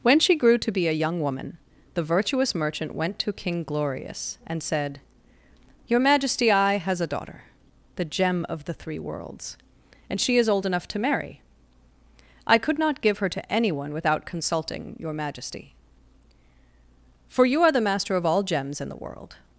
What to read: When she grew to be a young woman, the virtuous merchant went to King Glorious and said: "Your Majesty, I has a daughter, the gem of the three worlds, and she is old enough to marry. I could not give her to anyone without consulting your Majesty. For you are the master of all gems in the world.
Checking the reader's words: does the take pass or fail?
pass